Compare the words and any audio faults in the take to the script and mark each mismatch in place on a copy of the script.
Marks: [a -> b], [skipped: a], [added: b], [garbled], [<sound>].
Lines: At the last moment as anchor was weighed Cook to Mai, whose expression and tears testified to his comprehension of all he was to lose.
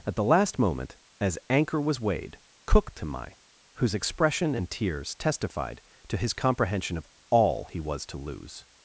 At the last moment as anchor was weighed Cook to Mai, whose expression and tears testified to his comprehension of all he was to lose.